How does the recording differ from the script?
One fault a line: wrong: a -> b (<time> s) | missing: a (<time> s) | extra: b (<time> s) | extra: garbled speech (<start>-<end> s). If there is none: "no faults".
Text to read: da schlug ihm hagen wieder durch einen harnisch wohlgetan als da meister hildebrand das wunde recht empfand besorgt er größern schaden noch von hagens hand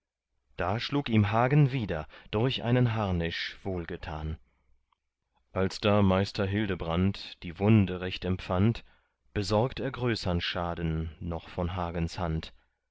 wrong: das -> die (7.4 s)